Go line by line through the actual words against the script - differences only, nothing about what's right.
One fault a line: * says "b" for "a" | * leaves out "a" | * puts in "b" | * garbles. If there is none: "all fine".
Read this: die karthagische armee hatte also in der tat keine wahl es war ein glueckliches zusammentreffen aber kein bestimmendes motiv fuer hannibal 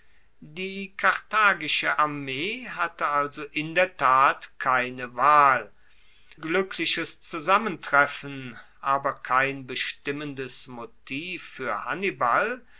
* leaves out "es war ein"